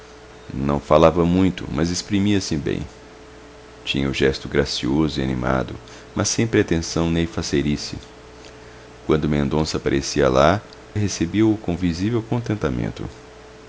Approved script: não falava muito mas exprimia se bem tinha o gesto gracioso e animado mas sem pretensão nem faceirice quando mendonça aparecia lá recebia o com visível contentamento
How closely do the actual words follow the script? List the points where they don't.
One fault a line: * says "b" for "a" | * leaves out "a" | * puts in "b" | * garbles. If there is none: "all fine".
all fine